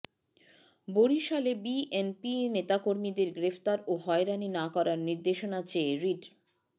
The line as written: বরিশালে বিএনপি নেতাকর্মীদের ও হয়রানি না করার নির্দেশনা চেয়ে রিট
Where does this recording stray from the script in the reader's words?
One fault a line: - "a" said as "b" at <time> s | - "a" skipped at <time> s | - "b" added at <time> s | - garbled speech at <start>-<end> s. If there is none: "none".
- "গ্রেফতার" added at 3.3 s